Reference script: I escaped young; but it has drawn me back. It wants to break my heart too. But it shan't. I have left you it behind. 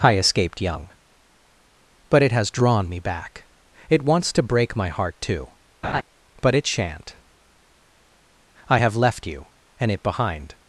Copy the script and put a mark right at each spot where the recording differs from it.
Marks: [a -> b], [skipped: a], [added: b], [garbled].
I escaped young; but it has drawn me back. It wants to break my heart too. But it shan't. I have left you [added: and] it behind.